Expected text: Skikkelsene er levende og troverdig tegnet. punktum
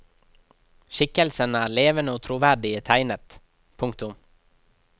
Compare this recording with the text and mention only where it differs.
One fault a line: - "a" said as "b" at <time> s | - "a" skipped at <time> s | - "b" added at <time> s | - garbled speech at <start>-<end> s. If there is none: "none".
none